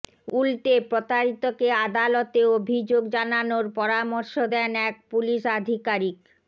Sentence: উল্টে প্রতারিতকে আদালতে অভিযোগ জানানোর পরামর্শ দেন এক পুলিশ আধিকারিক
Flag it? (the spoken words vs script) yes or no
no